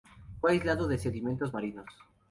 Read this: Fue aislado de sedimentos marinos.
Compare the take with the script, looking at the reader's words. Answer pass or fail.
pass